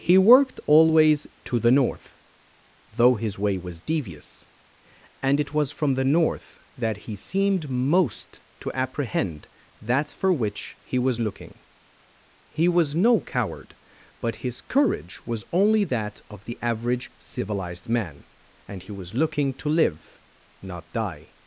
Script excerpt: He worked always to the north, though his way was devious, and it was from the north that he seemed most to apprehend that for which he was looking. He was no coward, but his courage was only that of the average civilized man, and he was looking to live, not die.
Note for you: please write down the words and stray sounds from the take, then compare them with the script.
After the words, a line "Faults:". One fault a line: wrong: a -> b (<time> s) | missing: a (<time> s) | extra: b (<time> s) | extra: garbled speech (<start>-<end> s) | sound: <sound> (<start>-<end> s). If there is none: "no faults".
He worked always to the north, though his way was devious, and it was from the north that he seemed most to apprehend that for which he was looking. He was no coward, but his courage was only that of the average civilized man, and he was looking to live, not die.
Faults:
no faults